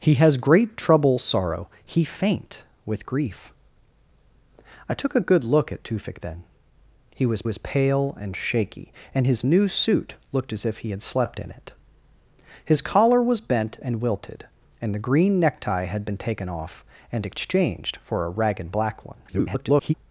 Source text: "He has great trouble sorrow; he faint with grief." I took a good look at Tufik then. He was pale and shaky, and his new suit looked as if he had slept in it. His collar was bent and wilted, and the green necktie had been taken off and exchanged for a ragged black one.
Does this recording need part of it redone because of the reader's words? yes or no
yes